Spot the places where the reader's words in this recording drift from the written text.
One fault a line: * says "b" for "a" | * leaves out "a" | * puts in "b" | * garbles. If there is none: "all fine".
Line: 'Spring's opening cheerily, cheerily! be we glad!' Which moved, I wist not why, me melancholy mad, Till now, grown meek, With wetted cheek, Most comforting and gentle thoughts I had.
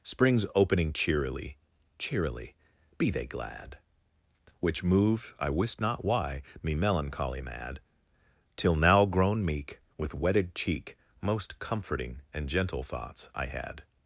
* says "they" for "we"